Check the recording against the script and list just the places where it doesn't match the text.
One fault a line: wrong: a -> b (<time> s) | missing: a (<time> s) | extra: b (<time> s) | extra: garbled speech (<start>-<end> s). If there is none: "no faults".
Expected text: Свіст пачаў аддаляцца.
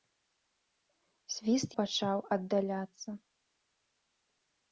no faults